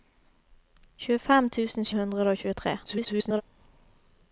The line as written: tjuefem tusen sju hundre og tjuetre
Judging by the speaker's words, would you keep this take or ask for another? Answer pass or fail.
fail